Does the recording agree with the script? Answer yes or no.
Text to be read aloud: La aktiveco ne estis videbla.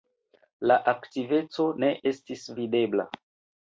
yes